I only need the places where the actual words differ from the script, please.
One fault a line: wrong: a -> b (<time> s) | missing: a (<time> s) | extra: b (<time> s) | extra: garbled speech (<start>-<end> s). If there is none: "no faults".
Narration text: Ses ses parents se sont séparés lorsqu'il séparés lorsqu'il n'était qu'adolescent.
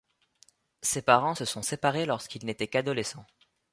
missing: ses (1.0 s)
missing: séparés lorsqu'il (2.4 s)